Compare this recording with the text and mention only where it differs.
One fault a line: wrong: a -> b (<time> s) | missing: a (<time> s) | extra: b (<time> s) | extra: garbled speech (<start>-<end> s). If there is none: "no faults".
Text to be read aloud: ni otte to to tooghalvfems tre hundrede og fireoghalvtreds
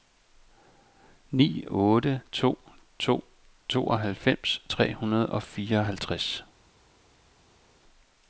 no faults